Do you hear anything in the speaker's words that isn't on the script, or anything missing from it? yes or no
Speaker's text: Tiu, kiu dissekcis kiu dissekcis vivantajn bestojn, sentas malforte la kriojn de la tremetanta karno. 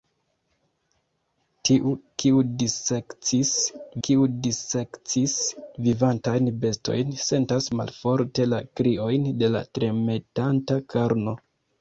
no